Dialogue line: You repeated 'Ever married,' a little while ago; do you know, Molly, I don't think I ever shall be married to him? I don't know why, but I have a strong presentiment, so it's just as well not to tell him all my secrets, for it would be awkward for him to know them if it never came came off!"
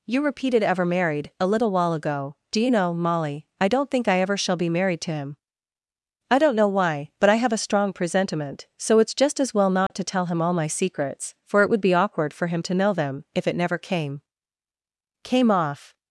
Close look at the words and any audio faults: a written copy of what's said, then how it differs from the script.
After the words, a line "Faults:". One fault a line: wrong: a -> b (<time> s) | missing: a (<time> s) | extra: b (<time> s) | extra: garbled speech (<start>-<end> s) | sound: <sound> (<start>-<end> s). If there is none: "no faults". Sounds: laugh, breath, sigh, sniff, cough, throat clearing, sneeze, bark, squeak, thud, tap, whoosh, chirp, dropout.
You repeated 'Ever married,' a little while ago; do you know, Molly, I don't think I ever shall be married to him? I don't know why, but I have a strong presentiment, so it's just as well not to tell him all my secrets, for it would be awkward for him to know them if it never came came off!"
Faults:
sound: dropout (9.9-9.9 s)